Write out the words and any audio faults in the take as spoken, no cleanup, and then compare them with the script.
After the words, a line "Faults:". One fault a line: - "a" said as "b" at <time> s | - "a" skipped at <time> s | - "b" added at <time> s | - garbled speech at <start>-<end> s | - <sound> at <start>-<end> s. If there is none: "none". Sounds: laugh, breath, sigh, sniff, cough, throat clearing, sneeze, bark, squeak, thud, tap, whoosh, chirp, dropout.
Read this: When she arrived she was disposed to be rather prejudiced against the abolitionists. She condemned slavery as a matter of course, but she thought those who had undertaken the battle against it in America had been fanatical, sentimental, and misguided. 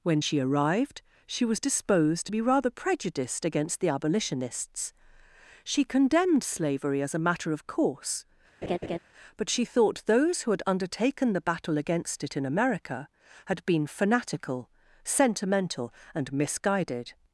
When she arrived she was disposed to be rather prejudiced against the abolitionists. She condemned slavery as a matter of course, but she thought those who had undertaken the battle against it in America had been fanatical, sentimental, and misguided.
Faults:
- laugh at 8.6-9.0 s